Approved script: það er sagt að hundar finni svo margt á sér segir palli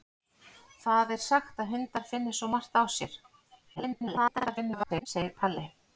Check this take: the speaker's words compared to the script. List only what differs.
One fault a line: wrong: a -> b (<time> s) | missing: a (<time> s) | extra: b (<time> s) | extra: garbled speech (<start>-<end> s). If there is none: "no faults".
extra: garbled speech (3.8-5.1 s)